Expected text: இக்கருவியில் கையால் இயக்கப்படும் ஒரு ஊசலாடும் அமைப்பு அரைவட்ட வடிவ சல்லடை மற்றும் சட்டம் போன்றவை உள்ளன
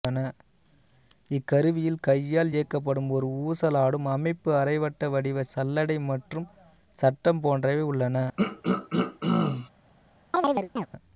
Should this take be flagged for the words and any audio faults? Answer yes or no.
yes